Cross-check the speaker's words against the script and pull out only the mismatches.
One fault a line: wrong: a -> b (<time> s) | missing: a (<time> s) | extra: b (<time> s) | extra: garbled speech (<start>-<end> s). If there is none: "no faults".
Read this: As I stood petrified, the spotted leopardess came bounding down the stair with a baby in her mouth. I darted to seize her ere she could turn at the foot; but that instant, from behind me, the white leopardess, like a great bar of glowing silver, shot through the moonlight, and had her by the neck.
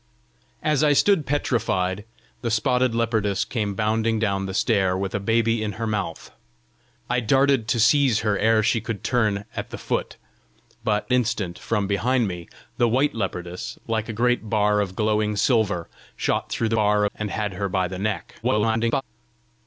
missing: that (11.1 s)
wrong: moonlight -> bar (16.7 s)
extra: garbled speech (18.4-19.0 s)